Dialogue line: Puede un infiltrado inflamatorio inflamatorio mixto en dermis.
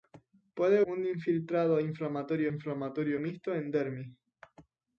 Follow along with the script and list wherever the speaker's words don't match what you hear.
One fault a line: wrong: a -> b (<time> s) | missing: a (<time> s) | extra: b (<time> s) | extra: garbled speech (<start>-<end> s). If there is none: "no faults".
no faults